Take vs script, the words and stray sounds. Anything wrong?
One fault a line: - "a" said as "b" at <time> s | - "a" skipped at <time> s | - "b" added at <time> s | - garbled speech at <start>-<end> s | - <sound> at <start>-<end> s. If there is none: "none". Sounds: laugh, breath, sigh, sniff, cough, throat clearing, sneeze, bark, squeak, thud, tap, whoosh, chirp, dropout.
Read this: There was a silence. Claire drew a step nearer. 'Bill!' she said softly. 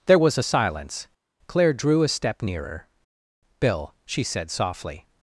none